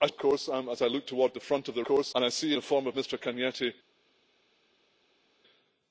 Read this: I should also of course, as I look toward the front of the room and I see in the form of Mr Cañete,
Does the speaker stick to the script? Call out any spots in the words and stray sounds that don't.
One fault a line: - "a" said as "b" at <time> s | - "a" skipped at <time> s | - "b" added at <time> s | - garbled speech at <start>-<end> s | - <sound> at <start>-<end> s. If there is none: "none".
- "should also" skipped at 0.1 s
- "room" said as "course" at 1.8 s
- "in" skipped at 2.5 s